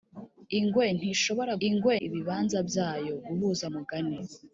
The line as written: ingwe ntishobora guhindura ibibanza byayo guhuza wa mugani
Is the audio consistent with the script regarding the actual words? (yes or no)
no